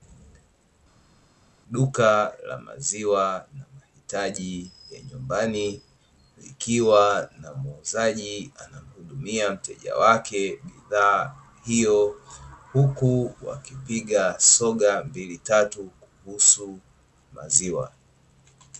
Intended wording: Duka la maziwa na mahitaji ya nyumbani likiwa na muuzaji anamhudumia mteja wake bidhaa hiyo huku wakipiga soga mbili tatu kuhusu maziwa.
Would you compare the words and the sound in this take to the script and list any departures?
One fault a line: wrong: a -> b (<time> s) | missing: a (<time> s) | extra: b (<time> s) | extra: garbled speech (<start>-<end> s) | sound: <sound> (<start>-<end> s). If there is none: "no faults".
no faults